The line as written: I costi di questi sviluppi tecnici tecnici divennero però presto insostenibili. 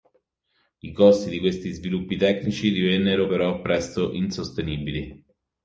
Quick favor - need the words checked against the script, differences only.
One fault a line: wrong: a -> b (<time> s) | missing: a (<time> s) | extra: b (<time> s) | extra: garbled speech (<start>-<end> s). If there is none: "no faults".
missing: tecnici (2.7 s)